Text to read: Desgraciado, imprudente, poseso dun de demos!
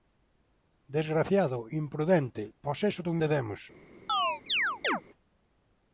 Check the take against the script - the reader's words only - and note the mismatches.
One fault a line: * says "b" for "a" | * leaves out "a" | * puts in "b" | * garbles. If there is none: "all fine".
all fine